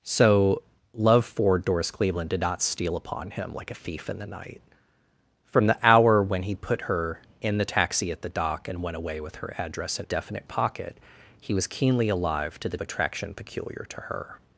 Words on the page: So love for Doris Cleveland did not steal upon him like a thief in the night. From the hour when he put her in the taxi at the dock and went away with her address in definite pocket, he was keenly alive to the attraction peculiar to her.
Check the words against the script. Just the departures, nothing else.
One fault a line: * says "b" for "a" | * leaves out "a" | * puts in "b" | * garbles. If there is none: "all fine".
all fine